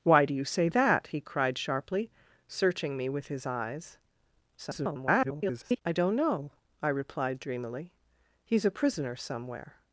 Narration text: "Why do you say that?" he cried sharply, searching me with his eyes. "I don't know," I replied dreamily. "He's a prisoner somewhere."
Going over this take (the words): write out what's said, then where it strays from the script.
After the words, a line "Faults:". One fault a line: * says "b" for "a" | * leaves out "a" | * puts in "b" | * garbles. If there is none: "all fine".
"Why do you say that?" he cried sharply, searching me with his eyes. [garbled] "I don't know," I replied dreamily. "He's a prisoner somewhere."
Faults:
* garbles